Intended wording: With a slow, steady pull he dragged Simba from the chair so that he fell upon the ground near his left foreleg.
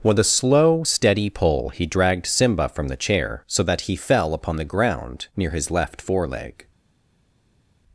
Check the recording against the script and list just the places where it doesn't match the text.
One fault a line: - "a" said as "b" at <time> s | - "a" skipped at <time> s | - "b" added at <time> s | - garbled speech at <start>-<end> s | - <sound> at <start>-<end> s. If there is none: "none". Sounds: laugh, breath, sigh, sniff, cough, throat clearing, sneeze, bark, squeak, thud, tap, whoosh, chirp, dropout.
none